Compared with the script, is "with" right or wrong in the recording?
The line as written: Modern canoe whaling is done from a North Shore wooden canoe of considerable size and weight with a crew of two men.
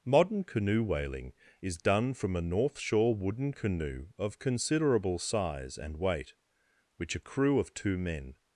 wrong